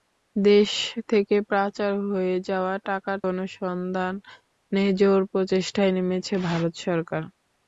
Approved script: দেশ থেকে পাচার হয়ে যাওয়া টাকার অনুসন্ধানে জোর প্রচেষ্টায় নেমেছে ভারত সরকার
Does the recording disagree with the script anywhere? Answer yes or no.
no